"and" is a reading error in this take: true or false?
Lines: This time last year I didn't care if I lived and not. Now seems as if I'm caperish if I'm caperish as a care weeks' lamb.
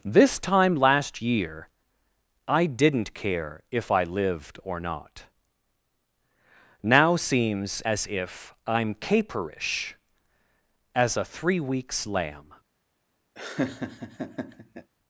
true